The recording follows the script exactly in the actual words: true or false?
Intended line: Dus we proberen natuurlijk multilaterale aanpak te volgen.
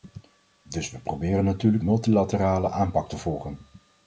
true